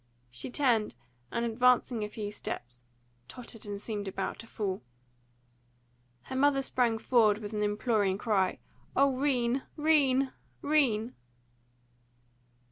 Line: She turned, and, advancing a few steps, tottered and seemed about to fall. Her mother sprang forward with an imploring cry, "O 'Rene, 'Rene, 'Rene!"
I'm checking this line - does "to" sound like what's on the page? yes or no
yes